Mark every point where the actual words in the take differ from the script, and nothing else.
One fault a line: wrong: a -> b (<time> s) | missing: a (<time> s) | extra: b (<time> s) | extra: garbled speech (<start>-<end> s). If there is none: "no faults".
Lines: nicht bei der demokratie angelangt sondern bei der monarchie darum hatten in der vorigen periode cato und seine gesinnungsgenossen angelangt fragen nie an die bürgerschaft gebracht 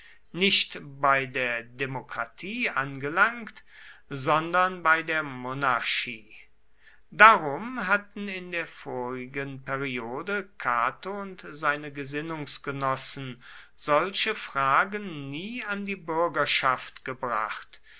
wrong: angelangt -> solche (13.7 s)